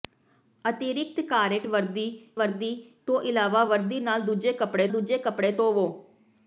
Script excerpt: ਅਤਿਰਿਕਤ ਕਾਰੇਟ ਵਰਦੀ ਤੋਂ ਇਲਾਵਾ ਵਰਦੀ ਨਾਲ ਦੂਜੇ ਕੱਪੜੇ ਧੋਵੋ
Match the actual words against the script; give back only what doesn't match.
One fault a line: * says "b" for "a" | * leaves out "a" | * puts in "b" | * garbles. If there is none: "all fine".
* puts in "ਵਰਦੀ"
* puts in "ਦੂਜੇ ਕੱਪੜੇ"